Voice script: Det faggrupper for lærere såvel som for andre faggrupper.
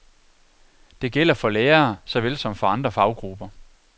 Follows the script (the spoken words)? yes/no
no